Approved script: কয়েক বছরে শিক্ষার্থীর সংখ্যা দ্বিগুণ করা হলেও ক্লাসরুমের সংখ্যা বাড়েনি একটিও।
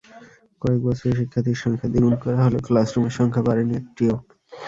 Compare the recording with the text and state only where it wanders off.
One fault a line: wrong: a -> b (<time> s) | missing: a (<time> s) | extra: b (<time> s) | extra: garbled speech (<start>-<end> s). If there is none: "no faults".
no faults